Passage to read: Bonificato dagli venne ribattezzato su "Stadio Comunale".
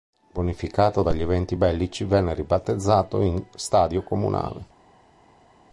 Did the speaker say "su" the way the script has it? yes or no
no